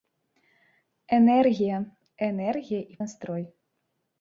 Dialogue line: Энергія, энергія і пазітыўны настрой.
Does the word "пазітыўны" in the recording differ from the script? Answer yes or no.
yes